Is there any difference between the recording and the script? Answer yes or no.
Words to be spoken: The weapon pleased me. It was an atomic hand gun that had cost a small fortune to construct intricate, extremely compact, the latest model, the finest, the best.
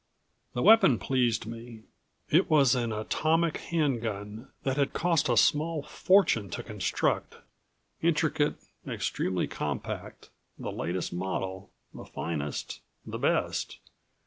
no